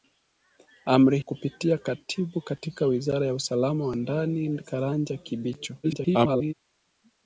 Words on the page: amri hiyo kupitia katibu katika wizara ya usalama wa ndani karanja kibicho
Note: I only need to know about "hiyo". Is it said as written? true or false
false